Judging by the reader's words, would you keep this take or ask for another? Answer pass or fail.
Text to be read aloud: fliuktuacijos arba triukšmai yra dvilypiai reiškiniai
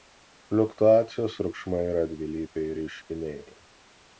fail